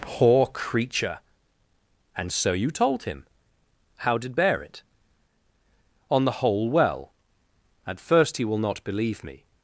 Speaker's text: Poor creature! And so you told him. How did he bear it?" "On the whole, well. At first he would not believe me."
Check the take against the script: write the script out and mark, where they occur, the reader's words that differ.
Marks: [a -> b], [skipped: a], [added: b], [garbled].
Poor creature! And so you told him. How did [skipped: he] bear it?" "On the whole, well. At first he [would -> will] not believe me."